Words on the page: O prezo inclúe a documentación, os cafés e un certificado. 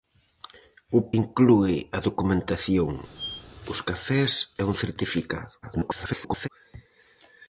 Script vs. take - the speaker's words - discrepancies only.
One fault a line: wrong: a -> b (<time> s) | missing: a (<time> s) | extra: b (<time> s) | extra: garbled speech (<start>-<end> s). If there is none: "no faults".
missing: prezo (1.0 s)
extra: garbled speech (5.6-6.5 s)